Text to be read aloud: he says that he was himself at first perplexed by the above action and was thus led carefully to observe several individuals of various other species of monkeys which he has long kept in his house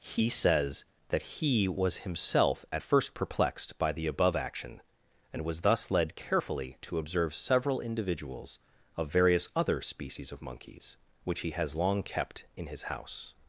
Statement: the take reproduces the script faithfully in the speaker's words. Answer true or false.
true